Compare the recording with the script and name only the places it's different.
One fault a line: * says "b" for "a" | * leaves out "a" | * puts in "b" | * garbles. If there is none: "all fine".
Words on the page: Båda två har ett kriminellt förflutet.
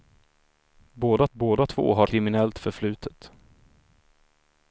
* puts in "båda"
* leaves out "ett"